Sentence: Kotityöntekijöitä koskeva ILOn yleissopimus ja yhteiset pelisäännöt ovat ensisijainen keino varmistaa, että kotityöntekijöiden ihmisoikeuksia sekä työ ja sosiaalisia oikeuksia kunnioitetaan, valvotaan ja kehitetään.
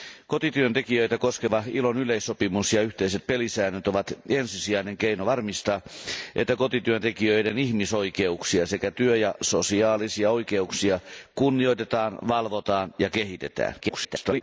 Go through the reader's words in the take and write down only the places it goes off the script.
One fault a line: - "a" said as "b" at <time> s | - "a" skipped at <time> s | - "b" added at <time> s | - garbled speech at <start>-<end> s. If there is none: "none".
- garbled speech at 13.8-14.4 s